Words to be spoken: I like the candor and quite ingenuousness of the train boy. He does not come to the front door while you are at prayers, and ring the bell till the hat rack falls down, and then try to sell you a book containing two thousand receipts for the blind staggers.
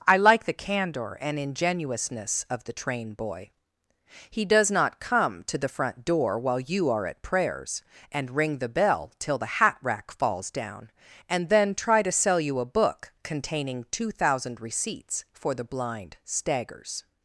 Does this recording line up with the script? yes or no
no